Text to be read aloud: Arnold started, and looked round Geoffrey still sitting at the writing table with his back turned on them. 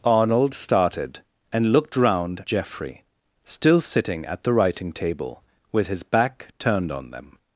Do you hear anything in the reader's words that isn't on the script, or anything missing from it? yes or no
no